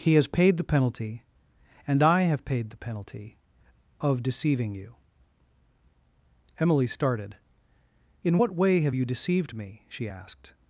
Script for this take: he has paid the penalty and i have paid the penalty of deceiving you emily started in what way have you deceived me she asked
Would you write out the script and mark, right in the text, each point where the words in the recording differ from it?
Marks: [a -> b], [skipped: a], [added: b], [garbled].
he has paid the penalty and i have paid the penalty of deceiving you emily started in what way have you deceived me she asked